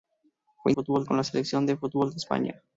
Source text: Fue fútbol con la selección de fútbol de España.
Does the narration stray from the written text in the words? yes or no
no